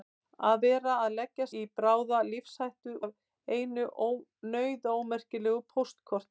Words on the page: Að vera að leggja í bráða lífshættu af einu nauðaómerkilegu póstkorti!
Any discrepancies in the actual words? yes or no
no